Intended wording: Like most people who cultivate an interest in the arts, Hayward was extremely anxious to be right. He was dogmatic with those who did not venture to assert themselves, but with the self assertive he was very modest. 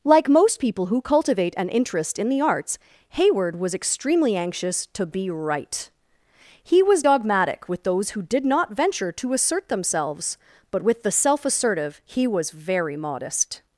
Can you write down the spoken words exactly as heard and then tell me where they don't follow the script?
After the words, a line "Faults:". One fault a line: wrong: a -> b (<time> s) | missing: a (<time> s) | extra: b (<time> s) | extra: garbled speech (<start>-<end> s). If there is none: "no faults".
Like most people who cultivate an interest in the arts, Hayward was extremely anxious to be right. He was dogmatic with those who did not venture to assert themselves, but with the self assertive he was very modest.
Faults:
no faults